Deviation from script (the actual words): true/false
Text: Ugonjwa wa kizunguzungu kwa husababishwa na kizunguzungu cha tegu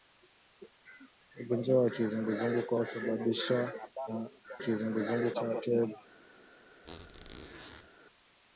false